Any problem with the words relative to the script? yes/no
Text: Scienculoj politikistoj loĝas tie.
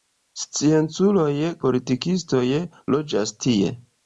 no